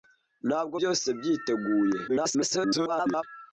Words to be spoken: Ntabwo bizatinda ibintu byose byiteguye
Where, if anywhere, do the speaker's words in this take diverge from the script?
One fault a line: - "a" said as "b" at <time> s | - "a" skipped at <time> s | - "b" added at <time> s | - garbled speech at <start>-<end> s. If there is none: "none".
- "bizatinda ibintu" skipped at 0.8 s
- garbled speech at 2.1-3.2 s